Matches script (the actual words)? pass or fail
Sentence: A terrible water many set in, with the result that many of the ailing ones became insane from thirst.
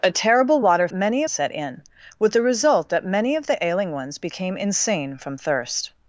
pass